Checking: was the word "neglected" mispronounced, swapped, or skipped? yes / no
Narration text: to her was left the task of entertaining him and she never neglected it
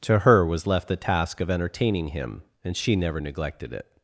no